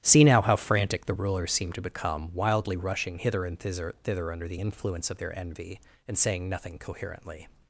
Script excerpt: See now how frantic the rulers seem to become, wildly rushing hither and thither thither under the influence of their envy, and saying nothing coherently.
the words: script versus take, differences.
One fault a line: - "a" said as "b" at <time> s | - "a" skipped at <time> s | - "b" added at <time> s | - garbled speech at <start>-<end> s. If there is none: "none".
none